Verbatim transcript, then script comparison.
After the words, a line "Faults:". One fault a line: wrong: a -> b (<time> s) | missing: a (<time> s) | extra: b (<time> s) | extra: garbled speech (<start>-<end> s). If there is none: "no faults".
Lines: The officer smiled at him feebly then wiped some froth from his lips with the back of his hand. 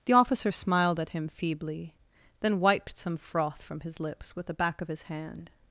The officer smiled at him feebly then wiped some froth from his lips with the back of his hand.
Faults:
no faults